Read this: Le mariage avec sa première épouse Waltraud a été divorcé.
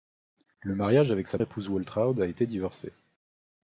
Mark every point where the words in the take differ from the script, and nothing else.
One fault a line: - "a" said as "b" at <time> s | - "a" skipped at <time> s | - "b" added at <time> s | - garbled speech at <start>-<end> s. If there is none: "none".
- "première" skipped at 1.4 s